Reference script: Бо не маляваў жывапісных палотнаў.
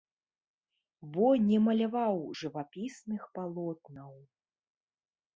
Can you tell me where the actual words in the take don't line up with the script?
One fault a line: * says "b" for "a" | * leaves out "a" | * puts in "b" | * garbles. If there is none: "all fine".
all fine